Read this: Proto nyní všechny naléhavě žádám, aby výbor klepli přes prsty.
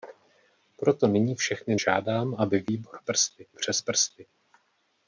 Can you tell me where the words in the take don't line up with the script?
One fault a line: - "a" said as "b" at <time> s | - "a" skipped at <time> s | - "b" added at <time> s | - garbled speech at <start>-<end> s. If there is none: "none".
- "naléhavě" skipped at 1.8 s
- "klepli" said as "prsty" at 3.0 s